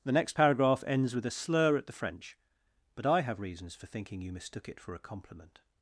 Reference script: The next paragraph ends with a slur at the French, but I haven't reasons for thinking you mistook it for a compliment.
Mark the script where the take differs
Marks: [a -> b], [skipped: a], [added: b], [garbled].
The next paragraph ends with a slur at the French, but I [haven't -> have] reasons for thinking you mistook it for a compliment.